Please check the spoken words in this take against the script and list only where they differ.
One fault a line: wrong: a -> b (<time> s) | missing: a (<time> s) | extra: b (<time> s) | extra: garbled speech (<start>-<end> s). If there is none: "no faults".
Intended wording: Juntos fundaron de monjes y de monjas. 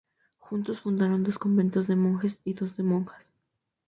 extra: dos conventos (1.2 s)
extra: dos (2.5 s)